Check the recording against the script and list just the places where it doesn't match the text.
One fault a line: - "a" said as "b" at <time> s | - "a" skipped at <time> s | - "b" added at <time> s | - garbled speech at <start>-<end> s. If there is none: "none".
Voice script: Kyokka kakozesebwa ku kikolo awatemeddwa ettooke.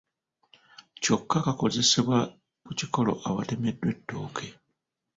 none